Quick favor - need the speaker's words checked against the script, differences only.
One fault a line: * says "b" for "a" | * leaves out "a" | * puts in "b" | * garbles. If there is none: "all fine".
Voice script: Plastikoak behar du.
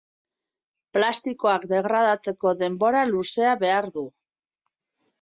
* puts in "degradatzeko denbora luzea"